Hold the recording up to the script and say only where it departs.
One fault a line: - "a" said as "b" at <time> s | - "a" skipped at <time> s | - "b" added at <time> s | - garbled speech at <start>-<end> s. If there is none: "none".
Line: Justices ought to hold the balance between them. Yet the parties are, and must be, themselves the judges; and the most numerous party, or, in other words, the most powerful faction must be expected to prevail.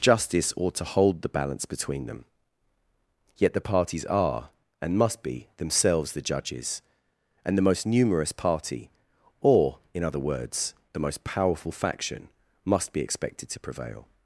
- "Justices" said as "Justice" at 0.0 s